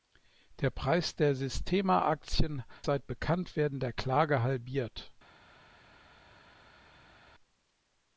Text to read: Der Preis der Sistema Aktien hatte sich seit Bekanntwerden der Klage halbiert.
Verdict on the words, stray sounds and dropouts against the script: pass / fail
fail